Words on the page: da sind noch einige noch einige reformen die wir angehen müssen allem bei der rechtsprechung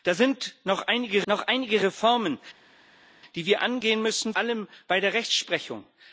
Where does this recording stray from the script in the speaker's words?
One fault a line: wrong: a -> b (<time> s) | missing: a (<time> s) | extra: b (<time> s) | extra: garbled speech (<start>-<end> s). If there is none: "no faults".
no faults